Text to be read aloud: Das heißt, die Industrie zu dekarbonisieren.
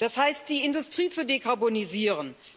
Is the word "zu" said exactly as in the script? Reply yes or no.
yes